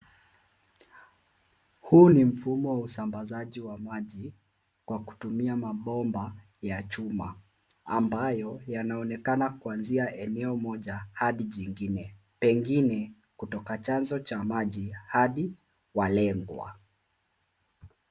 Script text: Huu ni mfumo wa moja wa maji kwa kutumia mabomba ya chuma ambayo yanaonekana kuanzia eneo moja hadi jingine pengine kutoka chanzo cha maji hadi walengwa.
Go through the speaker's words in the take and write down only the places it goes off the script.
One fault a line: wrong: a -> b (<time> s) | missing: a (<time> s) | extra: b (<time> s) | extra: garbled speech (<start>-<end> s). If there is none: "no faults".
wrong: moja -> usambazaji (2.8 s)